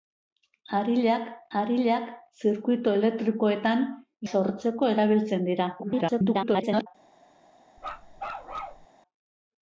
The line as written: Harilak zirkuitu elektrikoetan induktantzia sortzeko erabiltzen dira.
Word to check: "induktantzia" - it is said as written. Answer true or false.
false